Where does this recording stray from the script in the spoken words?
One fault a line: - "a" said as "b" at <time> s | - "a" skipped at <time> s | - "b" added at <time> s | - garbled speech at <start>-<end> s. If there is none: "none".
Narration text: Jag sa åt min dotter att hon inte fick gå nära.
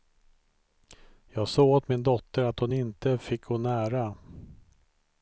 none